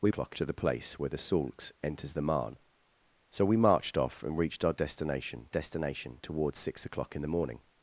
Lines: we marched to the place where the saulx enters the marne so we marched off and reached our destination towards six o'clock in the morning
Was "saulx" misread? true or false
false